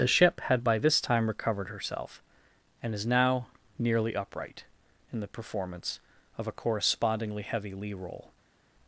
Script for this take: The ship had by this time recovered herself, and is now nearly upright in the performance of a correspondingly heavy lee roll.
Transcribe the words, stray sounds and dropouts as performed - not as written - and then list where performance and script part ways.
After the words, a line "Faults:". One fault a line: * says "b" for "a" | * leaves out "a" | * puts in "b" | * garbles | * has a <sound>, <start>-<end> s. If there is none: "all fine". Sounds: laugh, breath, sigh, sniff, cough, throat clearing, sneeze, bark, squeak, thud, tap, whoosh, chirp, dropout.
The ship had by this time recovered herself, and is now nearly upright in the performance of a correspondingly heavy lee roll.
Faults:
all fine